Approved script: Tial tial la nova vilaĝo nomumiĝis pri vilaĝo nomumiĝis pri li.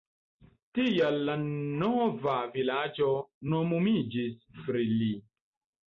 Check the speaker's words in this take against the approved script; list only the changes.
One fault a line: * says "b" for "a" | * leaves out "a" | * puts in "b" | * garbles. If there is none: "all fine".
* leaves out "tial"
* leaves out "vilaĝo nomumiĝis pri"